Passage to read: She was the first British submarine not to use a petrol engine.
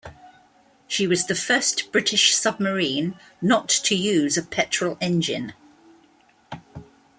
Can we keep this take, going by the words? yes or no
yes